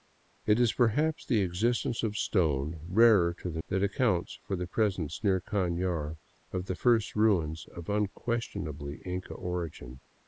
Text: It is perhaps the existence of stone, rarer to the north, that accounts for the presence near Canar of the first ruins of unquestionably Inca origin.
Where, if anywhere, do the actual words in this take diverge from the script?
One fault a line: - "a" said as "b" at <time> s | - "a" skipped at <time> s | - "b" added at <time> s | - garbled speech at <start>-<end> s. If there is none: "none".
- "north" skipped at 3.6 s